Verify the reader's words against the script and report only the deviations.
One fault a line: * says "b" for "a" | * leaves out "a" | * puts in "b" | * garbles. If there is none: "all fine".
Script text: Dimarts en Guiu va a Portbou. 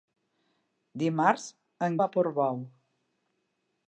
* leaves out "Guiu"